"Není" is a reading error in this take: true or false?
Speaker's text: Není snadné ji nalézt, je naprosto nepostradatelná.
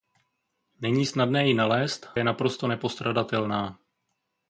false